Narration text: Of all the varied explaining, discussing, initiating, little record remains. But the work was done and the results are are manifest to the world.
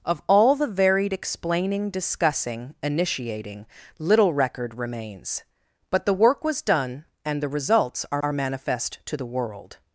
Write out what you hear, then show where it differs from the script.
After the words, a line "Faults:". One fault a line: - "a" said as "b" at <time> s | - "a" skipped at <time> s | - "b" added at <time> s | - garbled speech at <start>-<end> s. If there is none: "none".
Of all the varied explaining, discussing, initiating, little record remains. But the work was done and the results are are manifest to the world.
Faults:
none